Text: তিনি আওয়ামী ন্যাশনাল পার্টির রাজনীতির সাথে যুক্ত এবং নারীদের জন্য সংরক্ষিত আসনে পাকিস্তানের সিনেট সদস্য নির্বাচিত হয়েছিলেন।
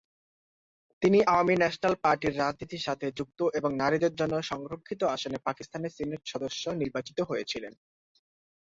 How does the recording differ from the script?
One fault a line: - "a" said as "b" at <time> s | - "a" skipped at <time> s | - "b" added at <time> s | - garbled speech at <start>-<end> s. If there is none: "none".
none